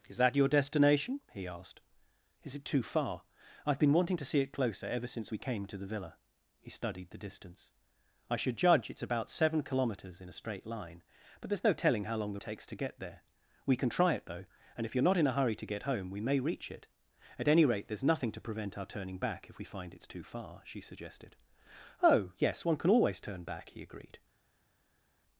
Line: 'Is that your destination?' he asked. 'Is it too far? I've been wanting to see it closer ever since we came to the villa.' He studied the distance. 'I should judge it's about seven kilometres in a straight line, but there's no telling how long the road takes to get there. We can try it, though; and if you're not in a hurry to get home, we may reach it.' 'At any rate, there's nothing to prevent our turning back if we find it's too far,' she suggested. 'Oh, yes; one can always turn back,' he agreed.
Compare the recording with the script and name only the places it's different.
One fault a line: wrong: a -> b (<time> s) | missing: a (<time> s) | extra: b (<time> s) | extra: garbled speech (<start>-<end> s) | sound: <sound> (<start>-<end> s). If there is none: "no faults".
missing: road (12.4 s)